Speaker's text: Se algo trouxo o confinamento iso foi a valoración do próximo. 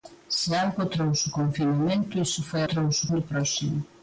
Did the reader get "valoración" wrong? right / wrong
wrong